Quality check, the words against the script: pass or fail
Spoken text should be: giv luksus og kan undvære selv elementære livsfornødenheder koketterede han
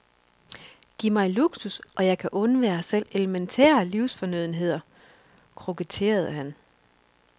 fail